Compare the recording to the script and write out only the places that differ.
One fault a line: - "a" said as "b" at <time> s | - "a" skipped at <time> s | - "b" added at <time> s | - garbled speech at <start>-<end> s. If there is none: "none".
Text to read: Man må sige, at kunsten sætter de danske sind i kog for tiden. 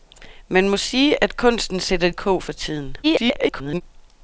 - "de danske sind" skipped at 2.1 s
- garbled speech at 3.0-3.8 s